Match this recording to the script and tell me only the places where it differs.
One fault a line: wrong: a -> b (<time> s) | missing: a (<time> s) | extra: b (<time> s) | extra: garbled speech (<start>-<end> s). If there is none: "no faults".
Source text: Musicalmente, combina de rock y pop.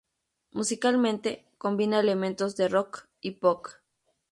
extra: elementos (2.0 s)